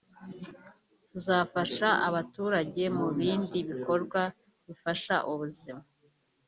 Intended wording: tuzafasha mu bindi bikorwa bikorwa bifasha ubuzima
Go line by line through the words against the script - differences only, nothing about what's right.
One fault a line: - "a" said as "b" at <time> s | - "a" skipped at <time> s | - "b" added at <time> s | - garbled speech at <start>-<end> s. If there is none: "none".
- "abaturage" added at 2.1 s
- "bikorwa" skipped at 4.2 s